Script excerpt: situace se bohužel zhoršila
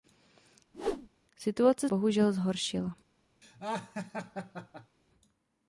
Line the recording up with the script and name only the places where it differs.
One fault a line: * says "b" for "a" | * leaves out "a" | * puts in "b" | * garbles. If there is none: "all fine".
* leaves out "se"